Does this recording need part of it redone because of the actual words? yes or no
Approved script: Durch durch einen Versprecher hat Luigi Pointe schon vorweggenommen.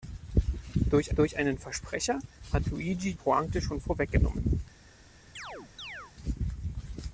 no